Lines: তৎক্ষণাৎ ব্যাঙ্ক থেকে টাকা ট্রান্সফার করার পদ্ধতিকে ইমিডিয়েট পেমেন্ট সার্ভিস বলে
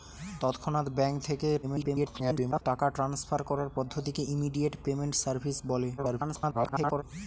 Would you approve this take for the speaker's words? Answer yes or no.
no